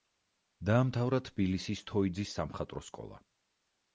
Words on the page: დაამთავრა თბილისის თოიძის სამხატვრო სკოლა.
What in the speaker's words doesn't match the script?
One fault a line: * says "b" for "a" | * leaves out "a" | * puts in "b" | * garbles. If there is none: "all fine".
all fine